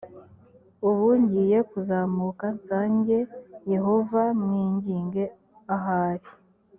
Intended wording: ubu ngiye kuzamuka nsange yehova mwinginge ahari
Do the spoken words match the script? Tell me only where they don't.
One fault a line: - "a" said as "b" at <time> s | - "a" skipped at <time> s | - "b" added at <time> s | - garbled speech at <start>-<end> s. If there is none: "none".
none